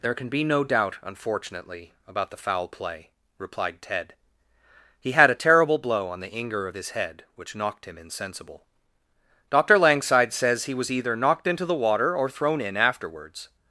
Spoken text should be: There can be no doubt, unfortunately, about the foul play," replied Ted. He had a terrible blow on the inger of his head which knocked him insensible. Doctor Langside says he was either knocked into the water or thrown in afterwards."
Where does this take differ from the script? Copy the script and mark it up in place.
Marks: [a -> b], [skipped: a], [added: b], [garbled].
There can be no doubt, unfortunately, about the foul play," replied Ted. He had a terrible blow on the inger of his head which knocked him insensible. Doctor Langside says he was either knocked into the water or thrown in afterwards."